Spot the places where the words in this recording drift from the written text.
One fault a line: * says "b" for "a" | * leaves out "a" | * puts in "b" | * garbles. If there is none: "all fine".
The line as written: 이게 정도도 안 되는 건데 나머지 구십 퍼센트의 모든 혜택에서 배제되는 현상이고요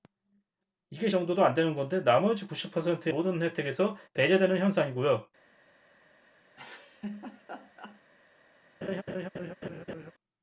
all fine